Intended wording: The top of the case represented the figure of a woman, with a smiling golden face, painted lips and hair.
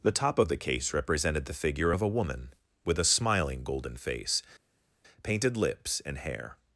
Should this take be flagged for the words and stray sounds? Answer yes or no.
no